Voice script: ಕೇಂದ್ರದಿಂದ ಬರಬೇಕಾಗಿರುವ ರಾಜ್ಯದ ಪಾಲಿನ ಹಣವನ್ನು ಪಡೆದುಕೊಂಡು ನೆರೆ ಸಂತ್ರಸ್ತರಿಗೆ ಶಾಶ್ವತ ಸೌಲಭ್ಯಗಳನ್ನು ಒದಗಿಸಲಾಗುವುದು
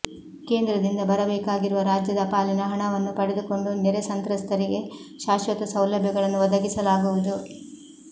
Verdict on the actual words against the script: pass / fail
pass